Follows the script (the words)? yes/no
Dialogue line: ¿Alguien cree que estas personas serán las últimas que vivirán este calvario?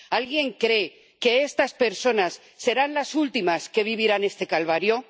yes